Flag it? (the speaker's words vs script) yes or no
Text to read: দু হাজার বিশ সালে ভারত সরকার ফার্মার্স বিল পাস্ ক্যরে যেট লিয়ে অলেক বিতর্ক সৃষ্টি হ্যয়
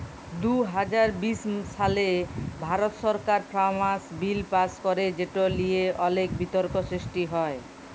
no